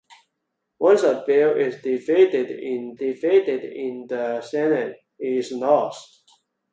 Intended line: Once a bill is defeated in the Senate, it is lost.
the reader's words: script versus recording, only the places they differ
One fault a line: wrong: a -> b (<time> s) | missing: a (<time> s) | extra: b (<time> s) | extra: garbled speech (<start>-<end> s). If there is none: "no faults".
extra: defeated in (3.0 s)